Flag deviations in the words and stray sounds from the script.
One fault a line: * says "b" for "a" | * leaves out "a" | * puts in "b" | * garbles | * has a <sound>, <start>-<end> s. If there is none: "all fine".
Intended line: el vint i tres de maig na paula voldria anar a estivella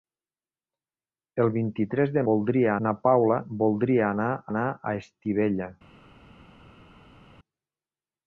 * says "voldria" for "maig"
* puts in "anar"